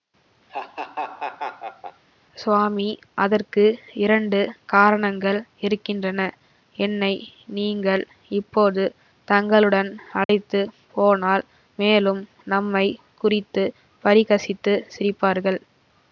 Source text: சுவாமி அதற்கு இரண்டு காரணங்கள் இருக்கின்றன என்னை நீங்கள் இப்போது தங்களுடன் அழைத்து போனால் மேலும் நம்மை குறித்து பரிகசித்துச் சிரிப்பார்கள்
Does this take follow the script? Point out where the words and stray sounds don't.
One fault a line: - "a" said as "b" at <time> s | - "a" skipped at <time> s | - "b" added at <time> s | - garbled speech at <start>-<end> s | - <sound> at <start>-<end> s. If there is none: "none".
- laugh at 0.5-2.0 s
- dropout at 10.2-10.3 s